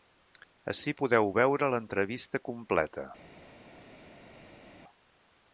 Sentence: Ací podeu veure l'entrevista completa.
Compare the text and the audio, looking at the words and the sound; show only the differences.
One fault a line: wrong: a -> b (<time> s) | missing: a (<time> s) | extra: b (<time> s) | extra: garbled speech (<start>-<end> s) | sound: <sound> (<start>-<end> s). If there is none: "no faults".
no faults